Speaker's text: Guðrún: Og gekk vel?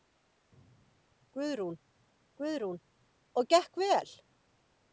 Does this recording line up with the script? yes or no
no